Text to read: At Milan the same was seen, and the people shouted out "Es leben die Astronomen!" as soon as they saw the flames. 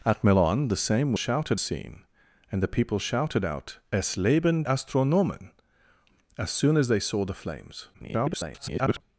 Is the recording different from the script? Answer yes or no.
yes